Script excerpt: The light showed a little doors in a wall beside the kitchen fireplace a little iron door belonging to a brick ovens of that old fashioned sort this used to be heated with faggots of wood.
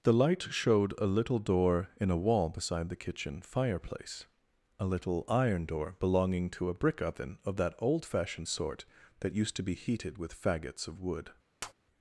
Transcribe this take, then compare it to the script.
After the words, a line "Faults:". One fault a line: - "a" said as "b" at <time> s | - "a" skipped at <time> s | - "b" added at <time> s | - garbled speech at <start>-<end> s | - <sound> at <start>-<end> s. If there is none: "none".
The light showed a little door in a wall beside the kitchen fireplace a little iron door belonging to a brick oven of that old fashioned sort that used to be heated with faggots of wood.
Faults:
- "doors" said as "door" at 1.4 s
- "ovens" said as "oven" at 7.0 s
- "this" said as "that" at 9.2 s
- tap at 11.6-11.7 s